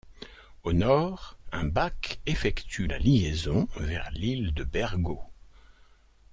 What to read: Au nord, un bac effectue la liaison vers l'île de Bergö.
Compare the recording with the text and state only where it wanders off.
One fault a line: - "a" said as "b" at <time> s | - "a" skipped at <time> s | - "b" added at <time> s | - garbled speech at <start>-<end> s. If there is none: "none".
none